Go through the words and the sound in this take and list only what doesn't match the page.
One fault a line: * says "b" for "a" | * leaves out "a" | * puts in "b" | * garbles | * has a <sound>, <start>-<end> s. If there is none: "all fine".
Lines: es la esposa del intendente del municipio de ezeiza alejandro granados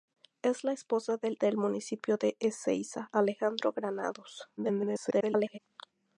* leaves out "intendente"
* garbles